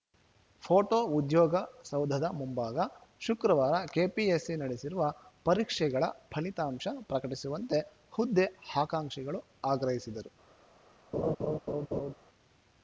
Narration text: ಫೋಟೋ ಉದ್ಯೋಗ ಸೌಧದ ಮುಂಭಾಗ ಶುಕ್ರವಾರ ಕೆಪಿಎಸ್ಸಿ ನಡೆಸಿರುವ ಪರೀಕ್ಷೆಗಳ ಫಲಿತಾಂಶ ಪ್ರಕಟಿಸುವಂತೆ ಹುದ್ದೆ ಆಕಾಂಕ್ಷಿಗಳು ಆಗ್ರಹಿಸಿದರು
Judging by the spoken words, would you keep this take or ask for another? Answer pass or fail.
pass